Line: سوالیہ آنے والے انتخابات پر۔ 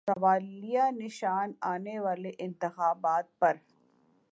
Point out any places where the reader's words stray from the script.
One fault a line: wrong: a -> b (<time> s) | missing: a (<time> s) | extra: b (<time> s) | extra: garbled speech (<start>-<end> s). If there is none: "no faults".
extra: نشان (0.9 s)